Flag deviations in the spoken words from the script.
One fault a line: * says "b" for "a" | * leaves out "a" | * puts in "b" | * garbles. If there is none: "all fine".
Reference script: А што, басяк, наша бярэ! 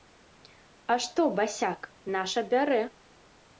all fine